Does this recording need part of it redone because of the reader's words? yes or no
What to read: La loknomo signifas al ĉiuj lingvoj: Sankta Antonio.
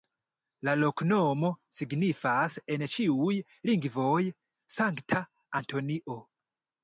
yes